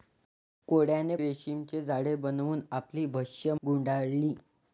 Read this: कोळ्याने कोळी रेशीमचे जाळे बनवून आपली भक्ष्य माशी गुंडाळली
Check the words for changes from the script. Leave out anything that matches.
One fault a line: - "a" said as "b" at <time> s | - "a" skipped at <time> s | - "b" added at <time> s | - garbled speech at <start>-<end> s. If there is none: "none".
- "कोळी" skipped at 1.1 s
- "माशी" skipped at 3.5 s